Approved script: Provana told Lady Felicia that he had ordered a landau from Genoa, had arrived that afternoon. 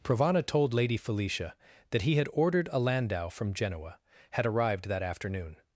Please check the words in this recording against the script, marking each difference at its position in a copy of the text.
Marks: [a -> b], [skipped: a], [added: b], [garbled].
Provana told Lady Felicia that he had ordered a landau from Genoa, had arrived that afternoon.